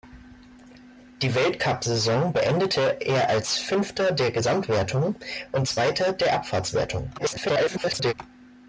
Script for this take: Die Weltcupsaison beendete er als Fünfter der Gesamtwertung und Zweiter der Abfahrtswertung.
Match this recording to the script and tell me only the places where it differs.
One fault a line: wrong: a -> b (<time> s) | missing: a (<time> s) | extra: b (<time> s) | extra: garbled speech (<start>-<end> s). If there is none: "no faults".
extra: garbled speech (7.2-8.1 s)